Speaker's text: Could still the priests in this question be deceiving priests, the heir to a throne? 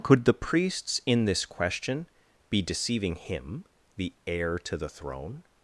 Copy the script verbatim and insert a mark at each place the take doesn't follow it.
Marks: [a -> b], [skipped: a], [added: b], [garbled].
Could [skipped: still] the priests in this question be deceiving [priests, -> him] the heir to [a -> the] throne?